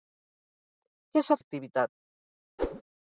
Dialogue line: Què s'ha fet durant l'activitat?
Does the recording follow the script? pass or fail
fail